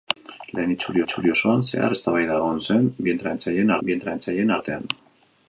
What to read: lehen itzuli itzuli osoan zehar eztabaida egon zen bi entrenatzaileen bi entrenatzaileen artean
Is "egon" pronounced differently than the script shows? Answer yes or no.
no